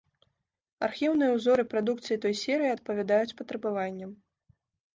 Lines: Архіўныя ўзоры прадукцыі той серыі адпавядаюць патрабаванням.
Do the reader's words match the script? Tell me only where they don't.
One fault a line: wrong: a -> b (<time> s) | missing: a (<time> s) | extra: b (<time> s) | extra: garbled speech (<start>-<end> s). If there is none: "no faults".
no faults